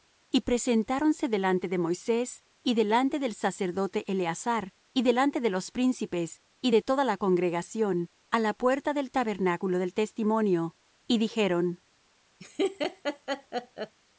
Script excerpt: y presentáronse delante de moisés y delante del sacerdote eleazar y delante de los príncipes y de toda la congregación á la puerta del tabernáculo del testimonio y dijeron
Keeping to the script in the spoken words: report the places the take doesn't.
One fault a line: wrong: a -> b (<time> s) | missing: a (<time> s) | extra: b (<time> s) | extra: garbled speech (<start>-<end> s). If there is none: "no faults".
no faults